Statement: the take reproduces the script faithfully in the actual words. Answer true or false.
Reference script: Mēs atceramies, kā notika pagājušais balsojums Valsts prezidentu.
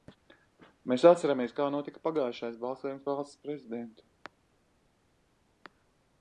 true